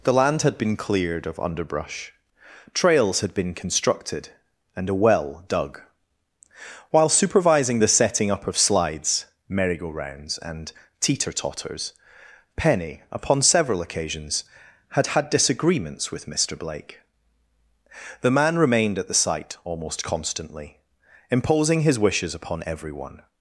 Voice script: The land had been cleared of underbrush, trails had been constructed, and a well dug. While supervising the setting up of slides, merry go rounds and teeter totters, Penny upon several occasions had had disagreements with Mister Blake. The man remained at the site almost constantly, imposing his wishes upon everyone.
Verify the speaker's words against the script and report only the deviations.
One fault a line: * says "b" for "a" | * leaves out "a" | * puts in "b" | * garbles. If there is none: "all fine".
all fine